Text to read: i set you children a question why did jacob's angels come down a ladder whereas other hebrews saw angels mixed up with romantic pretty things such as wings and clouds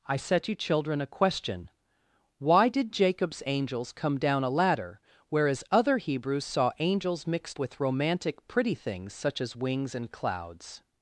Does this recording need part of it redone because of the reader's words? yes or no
yes